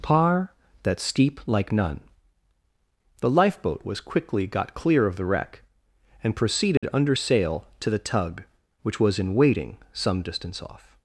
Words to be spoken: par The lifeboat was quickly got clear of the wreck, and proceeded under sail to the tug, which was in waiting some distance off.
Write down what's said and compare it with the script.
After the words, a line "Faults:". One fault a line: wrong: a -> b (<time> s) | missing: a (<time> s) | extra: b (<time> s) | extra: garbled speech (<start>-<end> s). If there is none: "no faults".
par that steep like none The lifeboat was quickly got clear of the wreck, and proceeded under sail to the tug, which was in waiting some distance off.
Faults:
extra: that steep like none (0.8 s)